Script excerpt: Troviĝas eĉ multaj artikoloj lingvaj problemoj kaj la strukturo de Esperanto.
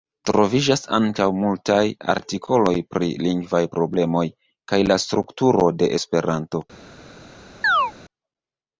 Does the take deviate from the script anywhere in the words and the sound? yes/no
yes